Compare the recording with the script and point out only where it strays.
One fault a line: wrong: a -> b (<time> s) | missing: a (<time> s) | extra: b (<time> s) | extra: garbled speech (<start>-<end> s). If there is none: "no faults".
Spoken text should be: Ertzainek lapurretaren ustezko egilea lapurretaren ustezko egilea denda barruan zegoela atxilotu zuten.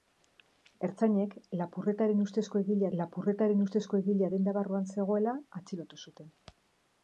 no faults